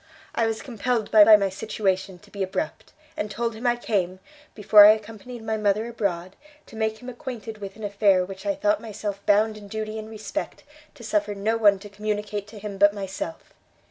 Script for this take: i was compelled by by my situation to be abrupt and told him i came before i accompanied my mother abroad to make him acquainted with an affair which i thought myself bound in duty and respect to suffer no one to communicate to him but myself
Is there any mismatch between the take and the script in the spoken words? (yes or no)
no